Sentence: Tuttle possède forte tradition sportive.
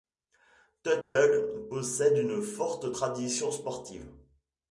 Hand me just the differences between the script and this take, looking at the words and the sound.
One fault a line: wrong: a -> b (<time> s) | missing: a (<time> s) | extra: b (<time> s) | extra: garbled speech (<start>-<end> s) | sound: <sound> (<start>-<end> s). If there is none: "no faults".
sound: dropout (1.0-1.2 s)
extra: une (2.2 s)